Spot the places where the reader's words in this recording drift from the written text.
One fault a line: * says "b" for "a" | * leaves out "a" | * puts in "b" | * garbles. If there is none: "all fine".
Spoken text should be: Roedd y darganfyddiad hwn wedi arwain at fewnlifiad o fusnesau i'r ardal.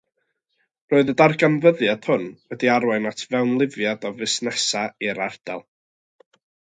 all fine